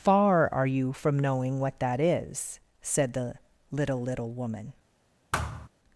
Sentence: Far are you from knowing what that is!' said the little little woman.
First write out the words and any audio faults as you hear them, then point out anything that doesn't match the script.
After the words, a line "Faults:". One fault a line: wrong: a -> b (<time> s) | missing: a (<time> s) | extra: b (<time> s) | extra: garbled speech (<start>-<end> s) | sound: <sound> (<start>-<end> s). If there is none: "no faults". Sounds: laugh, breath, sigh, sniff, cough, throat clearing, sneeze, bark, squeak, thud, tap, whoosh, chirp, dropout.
Far are you from knowing what that is!' said the little little woman.
Faults:
sound: thud (5.3-5.7 s)